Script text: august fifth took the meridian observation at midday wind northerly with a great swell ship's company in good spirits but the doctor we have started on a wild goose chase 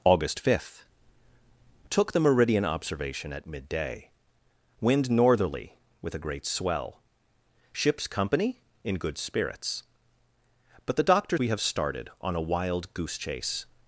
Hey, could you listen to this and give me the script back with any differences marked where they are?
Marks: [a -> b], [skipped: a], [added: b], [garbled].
august fifth took the meridian observation at midday wind northerly with a great swell ship's company in good spirits but the doctor we have started on a wild goose chase